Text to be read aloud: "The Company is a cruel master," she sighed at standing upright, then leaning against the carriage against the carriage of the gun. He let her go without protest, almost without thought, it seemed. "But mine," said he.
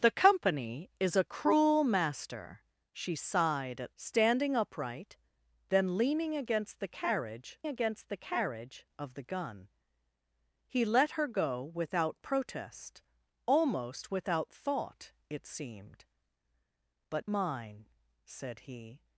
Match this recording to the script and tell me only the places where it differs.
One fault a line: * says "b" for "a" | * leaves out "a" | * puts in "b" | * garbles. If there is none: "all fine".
all fine